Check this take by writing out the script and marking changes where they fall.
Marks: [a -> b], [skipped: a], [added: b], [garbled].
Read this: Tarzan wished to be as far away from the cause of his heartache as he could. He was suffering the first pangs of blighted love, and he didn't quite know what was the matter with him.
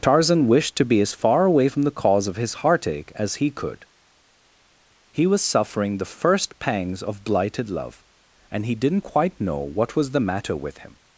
Tarzan wished to be as far away from the cause of his heartache as he could. He was suffering the first pangs of blighted love, and he didn't quite know what was the matter with him.